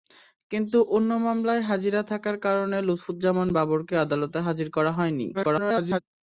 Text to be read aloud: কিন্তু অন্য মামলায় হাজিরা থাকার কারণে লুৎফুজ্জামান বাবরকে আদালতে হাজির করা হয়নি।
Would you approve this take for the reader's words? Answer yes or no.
no